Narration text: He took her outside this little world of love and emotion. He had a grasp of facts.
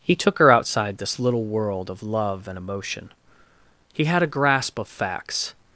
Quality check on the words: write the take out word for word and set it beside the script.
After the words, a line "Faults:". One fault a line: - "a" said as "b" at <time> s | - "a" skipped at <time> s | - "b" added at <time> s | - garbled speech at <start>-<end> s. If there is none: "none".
He took her outside this little world of love and emotion. He had a grasp of facts.
Faults:
none